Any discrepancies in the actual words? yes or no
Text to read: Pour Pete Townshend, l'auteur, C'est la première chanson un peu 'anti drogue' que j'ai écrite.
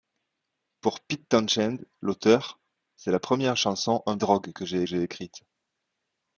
yes